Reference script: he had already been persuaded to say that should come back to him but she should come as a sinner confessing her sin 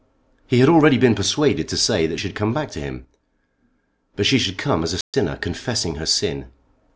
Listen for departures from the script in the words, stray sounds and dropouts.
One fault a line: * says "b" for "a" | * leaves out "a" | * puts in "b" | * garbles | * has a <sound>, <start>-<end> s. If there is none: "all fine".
* has a dropout, 5.0-5.1 s